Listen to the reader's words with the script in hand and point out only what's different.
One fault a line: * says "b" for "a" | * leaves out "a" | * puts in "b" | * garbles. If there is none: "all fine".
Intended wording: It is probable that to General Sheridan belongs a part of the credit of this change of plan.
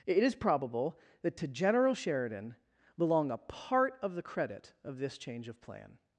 * says "belong" for "belongs"